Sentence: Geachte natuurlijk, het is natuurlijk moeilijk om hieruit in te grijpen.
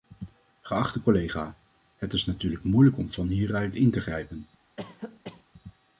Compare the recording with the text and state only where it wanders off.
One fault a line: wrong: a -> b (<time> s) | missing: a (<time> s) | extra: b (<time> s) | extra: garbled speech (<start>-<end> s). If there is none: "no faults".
wrong: natuurlijk -> collega (1.0 s)
extra: van (3.1 s)